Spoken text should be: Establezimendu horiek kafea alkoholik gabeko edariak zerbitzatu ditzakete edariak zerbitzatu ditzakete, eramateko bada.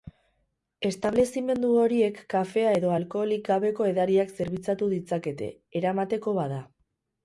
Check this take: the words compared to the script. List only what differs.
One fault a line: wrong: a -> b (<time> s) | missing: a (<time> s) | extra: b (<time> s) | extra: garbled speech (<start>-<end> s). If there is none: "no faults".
extra: edo (2.8 s)
missing: edariak zerbitzatu ditzakete (5.5 s)